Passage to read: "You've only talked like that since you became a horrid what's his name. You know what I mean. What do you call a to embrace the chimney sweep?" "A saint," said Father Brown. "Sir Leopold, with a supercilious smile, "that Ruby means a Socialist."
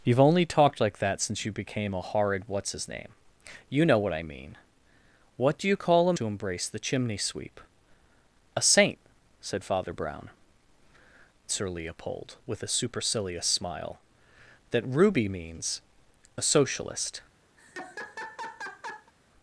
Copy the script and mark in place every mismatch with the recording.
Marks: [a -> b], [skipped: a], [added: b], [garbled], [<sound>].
"You've only talked like that since you became a horrid what's his name. You know what I mean. What do you call a to embrace the chimney sweep?" "A saint," said Father Brown. "Sir Leopold, with a supercilious smile, "that Ruby means a Socialist." [laugh]